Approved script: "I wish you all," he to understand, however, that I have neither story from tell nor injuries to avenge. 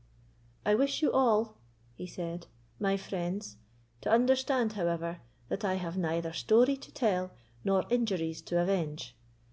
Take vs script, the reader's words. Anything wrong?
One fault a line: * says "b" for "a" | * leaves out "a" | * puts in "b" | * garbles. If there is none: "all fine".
* puts in "said my friends"
* says "to" for "from"